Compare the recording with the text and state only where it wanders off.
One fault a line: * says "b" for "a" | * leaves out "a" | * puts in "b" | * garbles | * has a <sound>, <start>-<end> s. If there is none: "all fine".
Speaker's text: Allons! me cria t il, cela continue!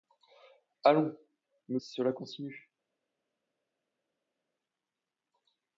* leaves out "cria t il"